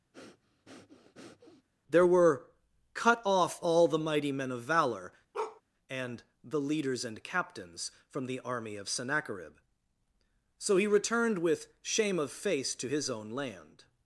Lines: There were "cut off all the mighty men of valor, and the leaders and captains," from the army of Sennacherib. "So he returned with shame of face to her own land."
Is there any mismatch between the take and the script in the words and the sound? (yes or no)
yes